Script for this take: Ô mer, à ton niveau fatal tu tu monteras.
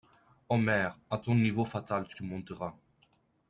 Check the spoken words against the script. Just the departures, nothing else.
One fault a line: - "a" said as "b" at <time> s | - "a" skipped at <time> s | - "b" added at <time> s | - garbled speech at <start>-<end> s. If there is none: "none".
none